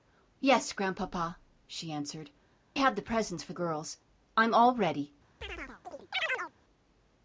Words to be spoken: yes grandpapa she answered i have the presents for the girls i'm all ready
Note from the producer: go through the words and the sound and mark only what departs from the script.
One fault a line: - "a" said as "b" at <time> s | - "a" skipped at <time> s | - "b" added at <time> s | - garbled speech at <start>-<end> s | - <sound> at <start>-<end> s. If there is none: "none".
- "i" skipped at 2.3 s
- "the" skipped at 3.5 s
- chirp at 5.4-6.5 s